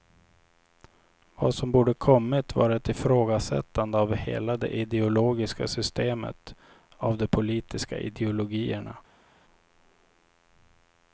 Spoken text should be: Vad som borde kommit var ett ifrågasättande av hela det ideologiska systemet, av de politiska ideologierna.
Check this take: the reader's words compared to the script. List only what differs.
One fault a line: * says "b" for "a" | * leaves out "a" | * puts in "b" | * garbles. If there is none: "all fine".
all fine